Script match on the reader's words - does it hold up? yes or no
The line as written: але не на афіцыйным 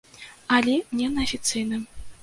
yes